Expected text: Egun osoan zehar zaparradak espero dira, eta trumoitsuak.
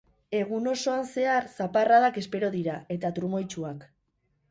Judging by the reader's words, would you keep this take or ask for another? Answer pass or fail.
pass